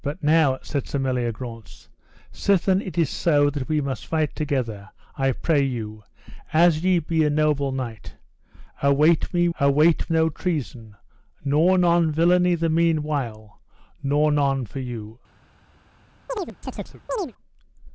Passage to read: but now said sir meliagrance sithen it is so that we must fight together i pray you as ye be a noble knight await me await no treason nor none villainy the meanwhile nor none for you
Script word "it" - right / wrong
right